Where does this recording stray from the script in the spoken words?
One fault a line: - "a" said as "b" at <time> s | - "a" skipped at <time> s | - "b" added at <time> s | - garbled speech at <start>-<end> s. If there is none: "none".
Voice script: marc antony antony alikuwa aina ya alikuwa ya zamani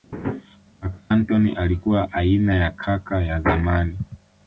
- "antony" skipped at 1.5 s
- "alikuwa" said as "kaka" at 2.7 s